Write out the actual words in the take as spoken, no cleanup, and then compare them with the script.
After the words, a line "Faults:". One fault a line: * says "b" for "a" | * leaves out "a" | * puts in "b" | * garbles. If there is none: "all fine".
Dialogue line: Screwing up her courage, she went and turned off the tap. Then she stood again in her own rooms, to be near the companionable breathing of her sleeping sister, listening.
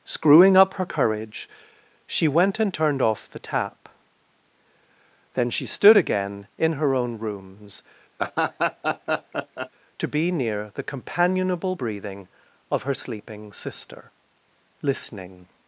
Screwing up her courage, she went and turned off the tap. Then she stood again in her own rooms, to be near the companionable breathing of her sleeping sister, listening.
Faults:
all fine